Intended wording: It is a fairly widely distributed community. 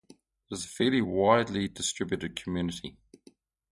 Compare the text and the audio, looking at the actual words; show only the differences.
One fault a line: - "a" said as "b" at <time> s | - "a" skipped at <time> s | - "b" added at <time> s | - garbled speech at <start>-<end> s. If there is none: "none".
none